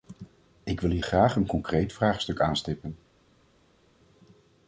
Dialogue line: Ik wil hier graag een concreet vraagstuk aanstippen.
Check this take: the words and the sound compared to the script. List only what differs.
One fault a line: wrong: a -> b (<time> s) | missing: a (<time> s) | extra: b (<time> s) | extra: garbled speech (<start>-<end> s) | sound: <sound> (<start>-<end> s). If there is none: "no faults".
no faults